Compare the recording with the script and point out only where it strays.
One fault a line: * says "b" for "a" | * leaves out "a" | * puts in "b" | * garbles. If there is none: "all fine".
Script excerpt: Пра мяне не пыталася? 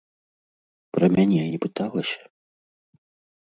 all fine